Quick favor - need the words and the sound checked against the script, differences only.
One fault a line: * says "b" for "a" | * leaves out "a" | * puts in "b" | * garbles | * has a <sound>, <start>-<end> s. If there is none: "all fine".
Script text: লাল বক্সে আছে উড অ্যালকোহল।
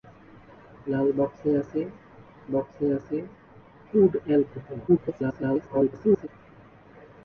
* puts in "বক্সে আছে"
* garbles